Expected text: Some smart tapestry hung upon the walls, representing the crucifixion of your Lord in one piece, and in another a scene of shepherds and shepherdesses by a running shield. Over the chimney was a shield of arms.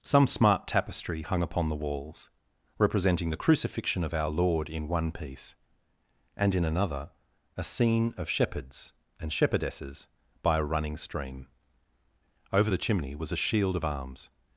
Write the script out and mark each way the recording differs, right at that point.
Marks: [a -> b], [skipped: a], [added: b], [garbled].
Some smart tapestry hung upon the walls, representing the crucifixion of [your -> our] Lord in one piece, and in another a scene of shepherds and shepherdesses by a running [shield. -> stream] Over the chimney was a shield of arms.